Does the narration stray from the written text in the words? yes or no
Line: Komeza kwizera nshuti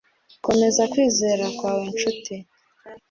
yes